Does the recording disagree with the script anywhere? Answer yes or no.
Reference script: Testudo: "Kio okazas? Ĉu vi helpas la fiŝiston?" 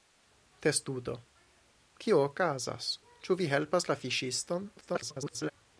yes